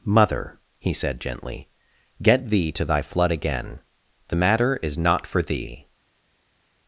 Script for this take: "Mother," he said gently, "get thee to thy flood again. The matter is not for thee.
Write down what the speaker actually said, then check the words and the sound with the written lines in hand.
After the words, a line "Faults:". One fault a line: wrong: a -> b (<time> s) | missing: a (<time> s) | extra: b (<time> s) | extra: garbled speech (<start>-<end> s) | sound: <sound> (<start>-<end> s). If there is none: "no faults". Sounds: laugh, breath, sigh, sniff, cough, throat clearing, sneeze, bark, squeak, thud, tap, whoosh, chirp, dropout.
"Mother," he said gently, "get thee to thy flood again. The matter is not for thee.
Faults:
no faults